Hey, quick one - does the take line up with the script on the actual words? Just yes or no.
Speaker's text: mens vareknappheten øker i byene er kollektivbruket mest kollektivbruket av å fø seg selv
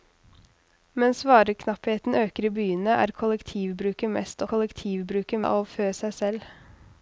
yes